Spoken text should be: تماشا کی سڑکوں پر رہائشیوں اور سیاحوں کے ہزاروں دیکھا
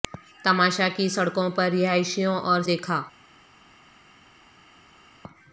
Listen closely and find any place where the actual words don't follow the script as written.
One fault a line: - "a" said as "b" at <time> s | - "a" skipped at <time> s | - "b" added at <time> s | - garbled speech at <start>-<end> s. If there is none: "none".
- "سیاحوں کے ہزاروں" skipped at 2.6 s